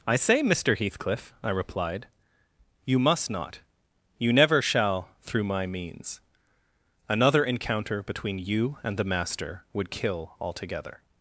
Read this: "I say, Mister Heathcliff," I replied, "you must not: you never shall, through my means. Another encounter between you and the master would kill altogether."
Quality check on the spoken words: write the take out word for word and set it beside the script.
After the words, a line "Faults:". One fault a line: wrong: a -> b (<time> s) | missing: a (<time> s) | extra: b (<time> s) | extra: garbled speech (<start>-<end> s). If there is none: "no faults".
"I say, Mister Heathcliff," I replied, "you must not: you never shall, through my means. Another encounter between you and the master would kill altogether."
Faults:
no faults